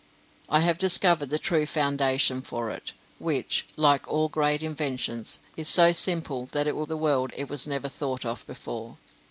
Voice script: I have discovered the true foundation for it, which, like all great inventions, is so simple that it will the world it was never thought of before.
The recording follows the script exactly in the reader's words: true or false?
true